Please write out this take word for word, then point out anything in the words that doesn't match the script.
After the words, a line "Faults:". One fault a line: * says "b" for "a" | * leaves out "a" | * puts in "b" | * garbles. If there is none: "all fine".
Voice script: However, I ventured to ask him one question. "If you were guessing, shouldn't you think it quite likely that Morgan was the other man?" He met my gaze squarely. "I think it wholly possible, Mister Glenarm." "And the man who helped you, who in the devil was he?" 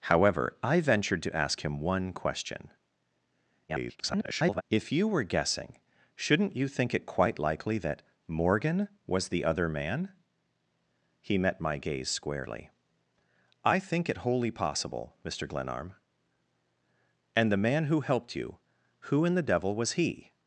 However, I ventured to ask him one question. [garbled] "If you were guessing, shouldn't you think it quite likely that Morgan was the other man?" He met my gaze squarely. "I think it wholly possible, Mister Glenarm." "And the man who helped you, who in the devil was he?"
Faults:
* garbles